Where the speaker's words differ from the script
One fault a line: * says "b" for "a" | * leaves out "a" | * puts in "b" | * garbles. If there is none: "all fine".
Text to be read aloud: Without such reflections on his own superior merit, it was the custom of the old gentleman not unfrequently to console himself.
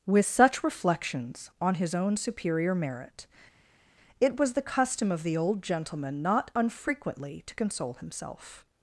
* says "With" for "Without"